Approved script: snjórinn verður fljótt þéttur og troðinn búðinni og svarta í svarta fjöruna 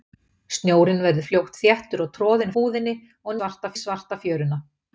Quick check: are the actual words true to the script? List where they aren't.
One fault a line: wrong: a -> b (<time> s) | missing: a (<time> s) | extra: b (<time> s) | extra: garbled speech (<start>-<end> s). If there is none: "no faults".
no faults